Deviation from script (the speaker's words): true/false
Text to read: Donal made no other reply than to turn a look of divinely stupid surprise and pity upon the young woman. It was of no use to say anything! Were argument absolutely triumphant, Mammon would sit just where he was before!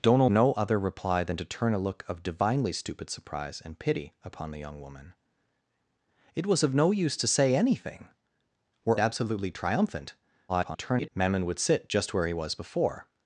true